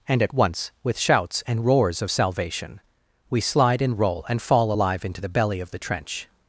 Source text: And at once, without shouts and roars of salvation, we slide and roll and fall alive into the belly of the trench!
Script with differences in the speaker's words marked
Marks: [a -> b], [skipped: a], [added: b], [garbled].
And at once, [without -> with] shouts and roars of salvation, we slide and roll and fall alive into the belly of the trench!